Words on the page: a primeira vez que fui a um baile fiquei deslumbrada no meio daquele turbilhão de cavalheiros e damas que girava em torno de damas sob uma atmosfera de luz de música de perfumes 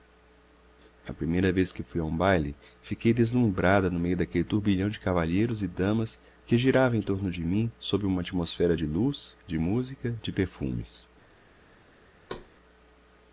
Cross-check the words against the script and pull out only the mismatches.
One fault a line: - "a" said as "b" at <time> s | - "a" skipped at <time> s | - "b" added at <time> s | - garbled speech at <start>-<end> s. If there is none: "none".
- "damas" said as "mim" at 7.5 s